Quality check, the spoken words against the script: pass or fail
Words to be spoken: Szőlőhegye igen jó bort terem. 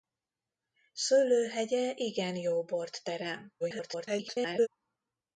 fail